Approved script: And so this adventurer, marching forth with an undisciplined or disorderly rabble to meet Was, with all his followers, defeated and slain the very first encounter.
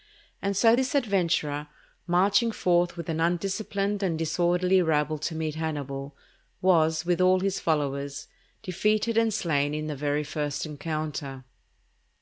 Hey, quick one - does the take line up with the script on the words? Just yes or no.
no